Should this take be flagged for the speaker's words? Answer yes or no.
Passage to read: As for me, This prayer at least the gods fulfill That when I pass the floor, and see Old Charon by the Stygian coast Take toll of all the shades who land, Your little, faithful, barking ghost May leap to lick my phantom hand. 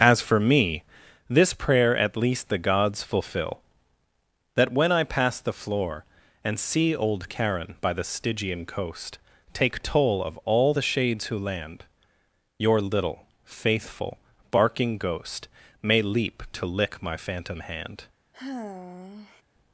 no